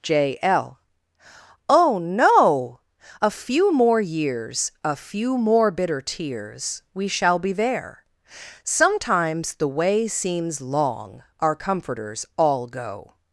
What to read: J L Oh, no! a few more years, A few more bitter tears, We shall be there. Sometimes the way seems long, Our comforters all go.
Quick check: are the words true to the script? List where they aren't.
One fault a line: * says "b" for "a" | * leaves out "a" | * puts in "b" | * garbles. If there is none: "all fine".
all fine